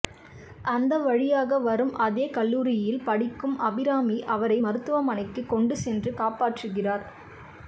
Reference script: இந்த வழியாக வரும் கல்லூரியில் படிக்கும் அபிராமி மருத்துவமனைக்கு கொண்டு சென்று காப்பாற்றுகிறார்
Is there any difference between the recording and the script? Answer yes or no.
yes